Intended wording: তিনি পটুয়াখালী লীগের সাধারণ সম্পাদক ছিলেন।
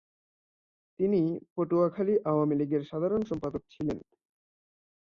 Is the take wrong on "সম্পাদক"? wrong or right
right